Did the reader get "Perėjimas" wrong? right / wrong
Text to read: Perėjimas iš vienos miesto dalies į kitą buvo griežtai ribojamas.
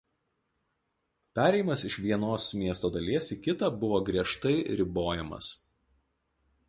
right